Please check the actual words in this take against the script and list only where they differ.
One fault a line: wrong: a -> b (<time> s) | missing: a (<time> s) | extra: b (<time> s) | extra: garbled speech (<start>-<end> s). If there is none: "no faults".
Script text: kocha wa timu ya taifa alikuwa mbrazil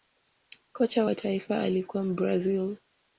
missing: timu ya (1.1 s)